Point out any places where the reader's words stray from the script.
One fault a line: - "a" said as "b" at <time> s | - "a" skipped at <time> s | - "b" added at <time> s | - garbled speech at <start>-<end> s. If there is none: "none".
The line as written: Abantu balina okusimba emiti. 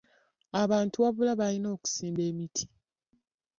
- "wabula" added at 1.0 s